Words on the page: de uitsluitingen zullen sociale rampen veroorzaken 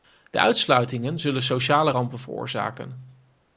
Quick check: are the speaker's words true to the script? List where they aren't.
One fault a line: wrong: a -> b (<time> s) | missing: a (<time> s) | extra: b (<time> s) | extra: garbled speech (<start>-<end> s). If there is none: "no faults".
no faults